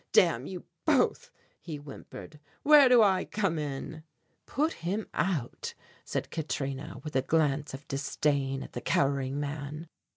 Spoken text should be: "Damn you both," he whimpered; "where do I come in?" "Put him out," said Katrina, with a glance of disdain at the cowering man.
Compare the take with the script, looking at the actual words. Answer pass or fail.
pass